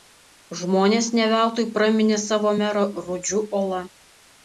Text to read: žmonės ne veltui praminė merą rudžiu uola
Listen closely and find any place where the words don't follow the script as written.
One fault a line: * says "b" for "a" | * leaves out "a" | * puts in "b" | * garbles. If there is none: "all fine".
* puts in "savo"